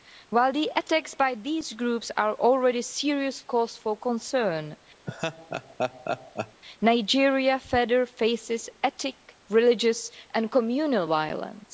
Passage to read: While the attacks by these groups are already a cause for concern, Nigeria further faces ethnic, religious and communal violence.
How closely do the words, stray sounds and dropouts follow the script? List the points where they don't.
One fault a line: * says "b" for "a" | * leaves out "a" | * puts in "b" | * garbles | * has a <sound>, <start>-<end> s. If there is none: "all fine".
* puts in "serious"
* has a laugh, 5.1-6.6 s